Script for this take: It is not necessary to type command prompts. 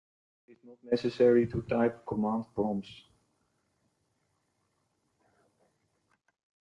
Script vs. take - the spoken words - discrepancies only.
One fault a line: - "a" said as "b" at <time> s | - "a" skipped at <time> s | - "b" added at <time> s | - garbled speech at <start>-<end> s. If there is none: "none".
none